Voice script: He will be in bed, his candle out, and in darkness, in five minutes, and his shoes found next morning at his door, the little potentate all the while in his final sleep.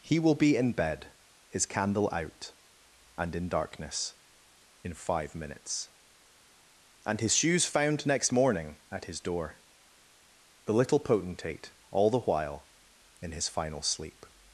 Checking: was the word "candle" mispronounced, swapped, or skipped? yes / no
no